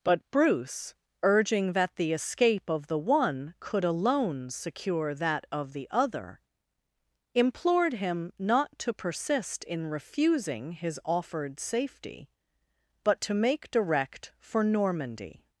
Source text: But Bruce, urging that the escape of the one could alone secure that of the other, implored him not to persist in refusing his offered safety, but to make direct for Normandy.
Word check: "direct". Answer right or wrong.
right